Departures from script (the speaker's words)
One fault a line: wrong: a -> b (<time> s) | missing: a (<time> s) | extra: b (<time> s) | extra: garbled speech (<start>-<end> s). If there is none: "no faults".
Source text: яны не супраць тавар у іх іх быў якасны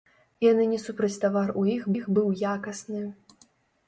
no faults